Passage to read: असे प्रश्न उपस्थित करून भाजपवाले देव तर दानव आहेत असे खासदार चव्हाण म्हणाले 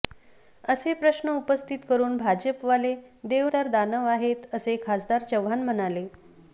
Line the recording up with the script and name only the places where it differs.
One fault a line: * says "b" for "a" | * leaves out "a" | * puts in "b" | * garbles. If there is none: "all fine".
all fine